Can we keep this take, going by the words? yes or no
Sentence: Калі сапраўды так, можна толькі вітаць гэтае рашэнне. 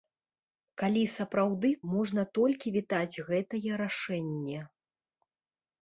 no